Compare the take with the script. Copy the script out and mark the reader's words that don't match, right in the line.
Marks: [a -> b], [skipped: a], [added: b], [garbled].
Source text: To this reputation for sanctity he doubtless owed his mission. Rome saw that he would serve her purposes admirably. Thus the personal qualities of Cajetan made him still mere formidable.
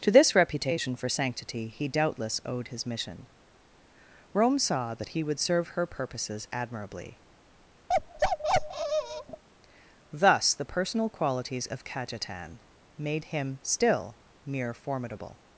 To this reputation for sanctity he doubtless owed his mission. Rome saw that he would serve her purposes admirably. Thus the personal qualities of Cajetan made him still mere formidable.